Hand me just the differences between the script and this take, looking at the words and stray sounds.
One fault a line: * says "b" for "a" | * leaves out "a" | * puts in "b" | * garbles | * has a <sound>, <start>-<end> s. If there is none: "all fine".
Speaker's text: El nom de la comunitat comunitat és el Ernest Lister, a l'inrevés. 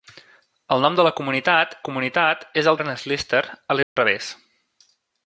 * has a dropout, 3.8-4.0 s